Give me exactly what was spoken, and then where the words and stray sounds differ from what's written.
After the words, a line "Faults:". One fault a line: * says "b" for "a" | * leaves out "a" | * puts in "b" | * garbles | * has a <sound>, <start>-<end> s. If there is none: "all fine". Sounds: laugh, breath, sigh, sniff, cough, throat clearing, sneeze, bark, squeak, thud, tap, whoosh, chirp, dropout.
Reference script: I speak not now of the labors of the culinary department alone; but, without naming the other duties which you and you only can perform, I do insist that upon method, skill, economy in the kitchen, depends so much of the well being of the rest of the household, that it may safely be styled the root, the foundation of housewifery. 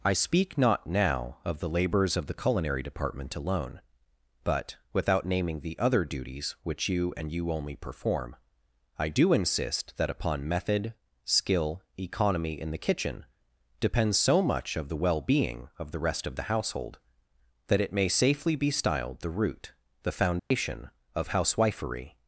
I speak not now of the labors of the culinary department alone; but, without naming the other duties which you and you only perform, I do insist that upon method, skill, economy in the kitchen, depends so much of the well being of the rest of the household, that it may safely be styled the root, the foundation of housewifery.
Faults:
* leaves out "can"
* has a dropout, 20.4-20.5 s